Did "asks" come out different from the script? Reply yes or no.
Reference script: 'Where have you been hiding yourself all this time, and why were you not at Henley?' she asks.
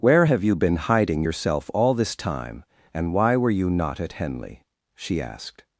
yes